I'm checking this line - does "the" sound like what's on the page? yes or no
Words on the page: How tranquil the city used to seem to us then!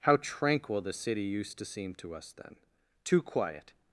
yes